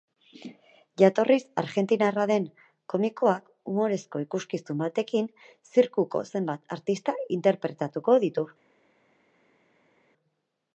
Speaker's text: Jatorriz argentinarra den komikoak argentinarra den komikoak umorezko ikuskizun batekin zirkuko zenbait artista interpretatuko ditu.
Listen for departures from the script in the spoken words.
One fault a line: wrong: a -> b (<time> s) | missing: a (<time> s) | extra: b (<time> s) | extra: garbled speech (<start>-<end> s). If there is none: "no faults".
missing: argentinarra den komikoak (3.5 s)